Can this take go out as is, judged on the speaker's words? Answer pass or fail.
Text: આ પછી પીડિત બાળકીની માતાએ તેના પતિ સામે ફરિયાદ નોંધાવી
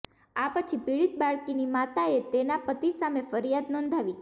pass